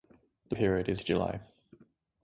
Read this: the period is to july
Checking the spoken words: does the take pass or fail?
pass